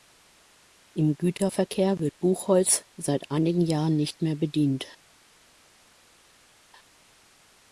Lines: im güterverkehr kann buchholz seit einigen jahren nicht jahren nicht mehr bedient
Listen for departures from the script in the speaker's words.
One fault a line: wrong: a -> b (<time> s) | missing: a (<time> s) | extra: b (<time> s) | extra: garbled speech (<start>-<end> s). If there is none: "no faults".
wrong: kann -> wird (2.0 s)
missing: jahren nicht (4.2 s)